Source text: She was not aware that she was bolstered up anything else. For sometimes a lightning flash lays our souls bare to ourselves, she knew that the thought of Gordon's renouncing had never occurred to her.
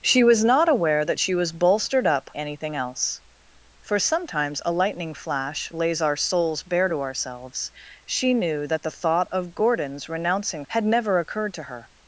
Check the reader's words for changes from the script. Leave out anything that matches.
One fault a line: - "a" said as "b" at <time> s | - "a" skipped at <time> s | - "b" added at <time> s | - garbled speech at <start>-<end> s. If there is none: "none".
none